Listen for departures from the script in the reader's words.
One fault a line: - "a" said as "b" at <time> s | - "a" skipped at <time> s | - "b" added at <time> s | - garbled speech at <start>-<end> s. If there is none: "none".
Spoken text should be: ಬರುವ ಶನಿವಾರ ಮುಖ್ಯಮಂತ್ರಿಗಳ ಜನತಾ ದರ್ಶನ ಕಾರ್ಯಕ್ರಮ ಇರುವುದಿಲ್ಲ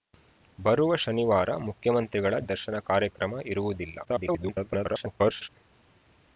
- "ಜನತಾ" skipped at 2.3 s
- garbled speech at 4.0-5.5 s